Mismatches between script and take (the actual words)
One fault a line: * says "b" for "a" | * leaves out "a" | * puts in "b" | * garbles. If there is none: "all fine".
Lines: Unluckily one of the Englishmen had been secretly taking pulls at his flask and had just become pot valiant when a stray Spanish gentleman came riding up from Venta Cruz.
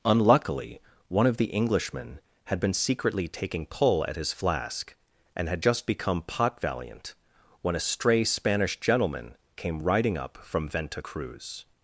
* says "pull" for "pulls"